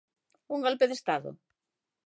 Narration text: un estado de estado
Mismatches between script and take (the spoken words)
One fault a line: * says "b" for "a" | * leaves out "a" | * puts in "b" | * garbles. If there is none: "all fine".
* says "golpe" for "estado"